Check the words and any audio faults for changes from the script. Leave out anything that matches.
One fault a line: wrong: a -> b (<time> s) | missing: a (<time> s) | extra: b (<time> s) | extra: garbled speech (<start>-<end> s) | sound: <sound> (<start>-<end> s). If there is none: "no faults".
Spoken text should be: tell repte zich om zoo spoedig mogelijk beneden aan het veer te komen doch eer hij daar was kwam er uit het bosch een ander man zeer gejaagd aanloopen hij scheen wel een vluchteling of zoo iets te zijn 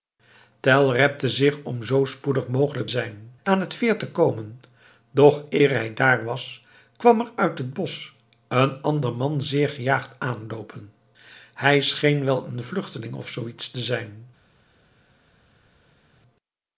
wrong: beneden -> zijn (2.8 s)